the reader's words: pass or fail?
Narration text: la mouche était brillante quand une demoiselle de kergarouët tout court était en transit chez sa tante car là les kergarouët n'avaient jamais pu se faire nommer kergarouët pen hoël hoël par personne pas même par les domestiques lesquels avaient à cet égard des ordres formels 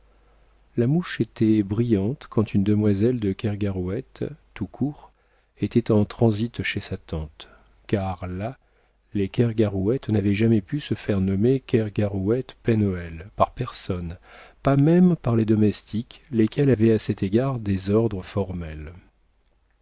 fail